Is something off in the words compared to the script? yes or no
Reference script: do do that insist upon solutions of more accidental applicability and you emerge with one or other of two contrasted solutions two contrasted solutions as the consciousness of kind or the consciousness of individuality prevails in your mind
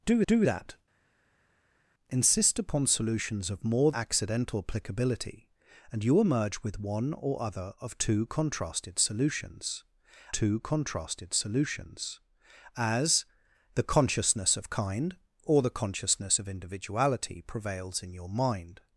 no